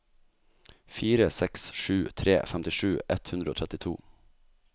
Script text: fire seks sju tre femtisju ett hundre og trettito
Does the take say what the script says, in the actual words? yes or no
yes